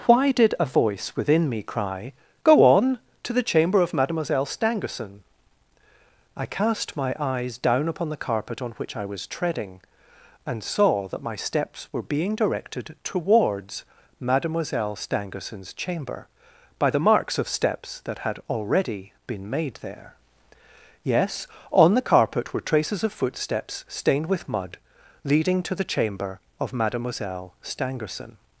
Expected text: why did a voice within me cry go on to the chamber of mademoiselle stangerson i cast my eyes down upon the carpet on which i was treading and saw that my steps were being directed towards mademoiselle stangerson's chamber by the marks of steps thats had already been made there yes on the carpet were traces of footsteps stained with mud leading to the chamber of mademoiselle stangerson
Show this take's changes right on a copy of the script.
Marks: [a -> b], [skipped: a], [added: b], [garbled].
why did a voice within me cry go on to the chamber of mademoiselle stangerson i cast my eyes down upon the carpet on which i was treading and saw that my steps were being directed towards mademoiselle stangerson's chamber by the marks of steps [thats -> that] had already been made there yes on the carpet were traces of footsteps stained with mud leading to the chamber of mademoiselle stangerson